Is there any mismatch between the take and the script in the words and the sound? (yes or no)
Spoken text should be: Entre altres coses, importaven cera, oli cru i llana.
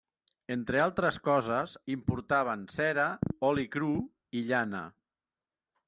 no